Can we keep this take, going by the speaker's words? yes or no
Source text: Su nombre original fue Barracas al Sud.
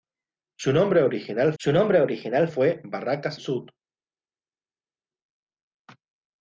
no